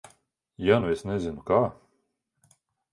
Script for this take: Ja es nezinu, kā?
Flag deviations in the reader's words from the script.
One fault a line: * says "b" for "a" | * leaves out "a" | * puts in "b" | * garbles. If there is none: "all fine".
* puts in "nu"